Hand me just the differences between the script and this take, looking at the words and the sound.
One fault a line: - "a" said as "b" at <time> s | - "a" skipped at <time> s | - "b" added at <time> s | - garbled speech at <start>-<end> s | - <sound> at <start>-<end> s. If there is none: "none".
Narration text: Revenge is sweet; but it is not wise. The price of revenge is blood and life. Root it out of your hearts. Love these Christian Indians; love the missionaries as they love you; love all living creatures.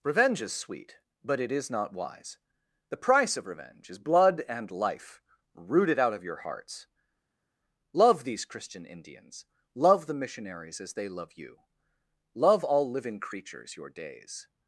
- "Your days" added at 13.8 s